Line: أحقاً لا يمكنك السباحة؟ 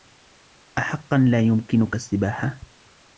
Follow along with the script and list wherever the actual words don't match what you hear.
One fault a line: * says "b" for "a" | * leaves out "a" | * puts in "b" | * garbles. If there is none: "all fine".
all fine